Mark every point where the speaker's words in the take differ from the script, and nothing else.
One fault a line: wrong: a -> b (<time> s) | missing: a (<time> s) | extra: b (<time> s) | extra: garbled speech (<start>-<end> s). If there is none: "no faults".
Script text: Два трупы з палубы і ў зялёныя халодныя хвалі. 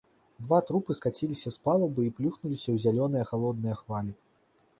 extra: скаціліся (1.0 s)
extra: плюхнуліся (2.2 s)